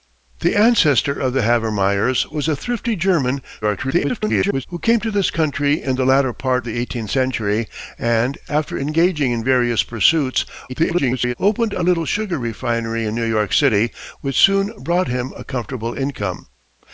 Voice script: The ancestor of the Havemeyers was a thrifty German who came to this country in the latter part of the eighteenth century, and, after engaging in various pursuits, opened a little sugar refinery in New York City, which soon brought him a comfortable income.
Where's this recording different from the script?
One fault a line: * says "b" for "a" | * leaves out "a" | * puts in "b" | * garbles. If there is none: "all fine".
* garbles
* leaves out "of"
* garbles